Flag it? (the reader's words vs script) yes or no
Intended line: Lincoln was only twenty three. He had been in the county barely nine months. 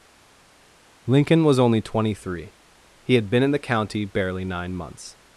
no